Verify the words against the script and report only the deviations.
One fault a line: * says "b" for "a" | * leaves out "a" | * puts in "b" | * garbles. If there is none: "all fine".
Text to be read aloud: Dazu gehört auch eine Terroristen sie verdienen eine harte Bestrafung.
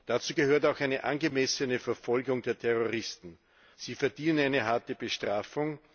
* puts in "angemessene Verfolgung der"